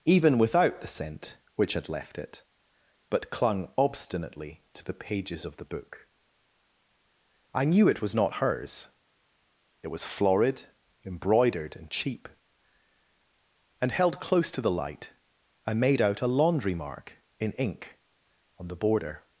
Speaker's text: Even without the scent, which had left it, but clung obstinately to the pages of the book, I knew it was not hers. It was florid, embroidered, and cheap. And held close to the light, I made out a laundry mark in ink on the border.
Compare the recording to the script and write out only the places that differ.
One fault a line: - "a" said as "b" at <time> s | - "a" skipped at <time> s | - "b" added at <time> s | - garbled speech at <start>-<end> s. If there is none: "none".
none